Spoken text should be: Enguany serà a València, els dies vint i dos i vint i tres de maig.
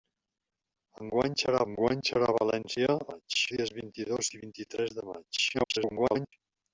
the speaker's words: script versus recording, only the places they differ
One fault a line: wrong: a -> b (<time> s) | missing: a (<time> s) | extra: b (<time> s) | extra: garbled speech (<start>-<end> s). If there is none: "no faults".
extra: enguany serà (1.7 s)
wrong: els -> maig (3.1 s)
extra: garbled speech (5.5-6.3 s)